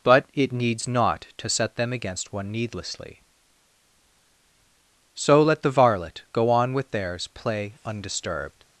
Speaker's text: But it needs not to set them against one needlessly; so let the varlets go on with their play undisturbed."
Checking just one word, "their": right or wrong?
wrong